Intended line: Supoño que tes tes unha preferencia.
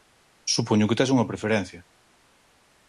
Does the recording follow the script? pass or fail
fail